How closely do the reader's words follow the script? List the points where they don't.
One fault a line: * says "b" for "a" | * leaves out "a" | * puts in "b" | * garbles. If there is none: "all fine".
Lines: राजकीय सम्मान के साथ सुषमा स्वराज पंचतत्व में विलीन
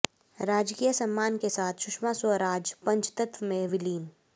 all fine